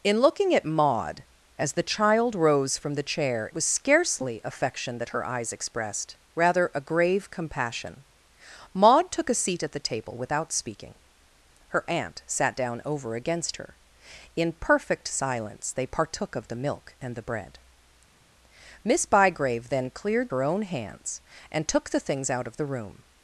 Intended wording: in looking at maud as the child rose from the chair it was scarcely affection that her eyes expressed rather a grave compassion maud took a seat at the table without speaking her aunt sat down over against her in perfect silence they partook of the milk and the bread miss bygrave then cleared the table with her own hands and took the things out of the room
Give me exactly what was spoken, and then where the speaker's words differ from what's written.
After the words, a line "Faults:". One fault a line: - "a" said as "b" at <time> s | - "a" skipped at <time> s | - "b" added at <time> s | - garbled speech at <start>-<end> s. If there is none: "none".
in looking at maud as the child rose from the chair was scarcely affection that her eyes expressed rather a grave compassion maud took a seat at the table without speaking her aunt sat down over against her in perfect silence they partook of the milk and the bread miss bygrave then cleared her own hands and took the things out of the room
Faults:
- "it" skipped at 3.5 s
- "the table with" skipped at 20.3 s